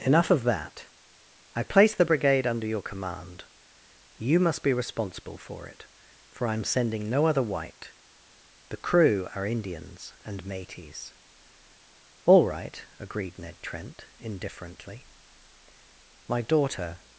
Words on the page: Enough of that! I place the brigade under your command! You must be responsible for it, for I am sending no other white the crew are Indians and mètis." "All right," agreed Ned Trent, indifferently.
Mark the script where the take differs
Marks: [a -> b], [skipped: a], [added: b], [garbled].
Enough of that! I place the brigade under your command! You must be responsible for it, for I am sending no other white the crew are Indians and mètis." "All right," agreed Ned Trent, indifferently. [added: My daughter]